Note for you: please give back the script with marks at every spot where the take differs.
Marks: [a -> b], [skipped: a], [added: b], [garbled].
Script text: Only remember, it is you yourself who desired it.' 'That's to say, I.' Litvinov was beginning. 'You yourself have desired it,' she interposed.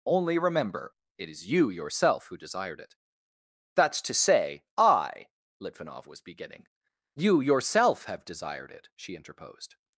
Only remember, it is you yourself who desired it.' 'That's to say, I.' Litvinov was beginning. 'You yourself have desired it,' she interposed.